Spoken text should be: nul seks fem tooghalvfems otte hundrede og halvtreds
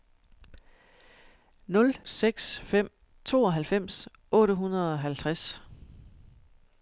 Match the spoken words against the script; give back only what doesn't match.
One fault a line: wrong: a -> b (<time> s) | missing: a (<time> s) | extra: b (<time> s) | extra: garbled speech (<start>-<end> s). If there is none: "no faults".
no faults